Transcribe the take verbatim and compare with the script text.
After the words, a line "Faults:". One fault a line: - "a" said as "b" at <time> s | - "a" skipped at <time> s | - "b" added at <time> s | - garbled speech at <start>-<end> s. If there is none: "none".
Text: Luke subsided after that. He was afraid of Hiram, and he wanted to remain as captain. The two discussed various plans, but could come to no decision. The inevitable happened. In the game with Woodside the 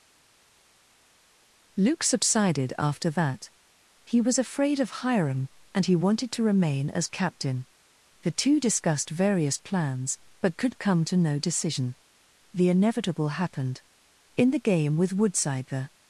Luke subsided after that. He was afraid of Hiram, and he wanted to remain as captain. The two discussed various plans, but could come to no decision. The inevitable happened. In the game with Woodside the
Faults:
none